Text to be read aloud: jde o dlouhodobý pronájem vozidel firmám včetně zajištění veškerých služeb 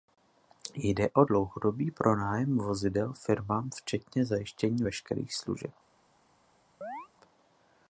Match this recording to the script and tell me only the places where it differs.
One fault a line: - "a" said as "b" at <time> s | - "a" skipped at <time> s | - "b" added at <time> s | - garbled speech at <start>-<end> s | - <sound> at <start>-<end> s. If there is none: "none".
- chirp at 6.8-7.1 s